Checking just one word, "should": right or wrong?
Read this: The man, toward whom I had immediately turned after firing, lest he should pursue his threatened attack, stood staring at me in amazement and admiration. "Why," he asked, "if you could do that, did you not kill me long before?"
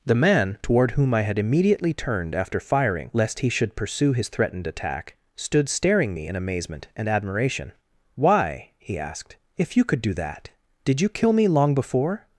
right